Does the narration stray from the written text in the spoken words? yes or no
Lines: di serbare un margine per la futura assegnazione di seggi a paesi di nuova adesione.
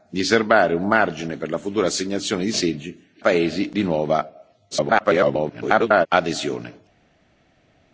yes